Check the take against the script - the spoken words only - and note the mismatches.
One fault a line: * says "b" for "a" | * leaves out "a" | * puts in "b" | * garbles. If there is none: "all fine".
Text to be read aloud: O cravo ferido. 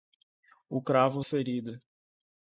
all fine